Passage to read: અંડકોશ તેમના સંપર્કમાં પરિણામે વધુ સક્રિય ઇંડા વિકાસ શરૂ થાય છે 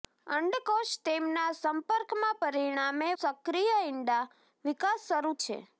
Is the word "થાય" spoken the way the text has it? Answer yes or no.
no